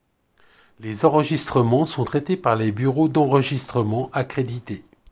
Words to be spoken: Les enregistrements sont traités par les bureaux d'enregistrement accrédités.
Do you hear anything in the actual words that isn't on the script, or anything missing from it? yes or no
no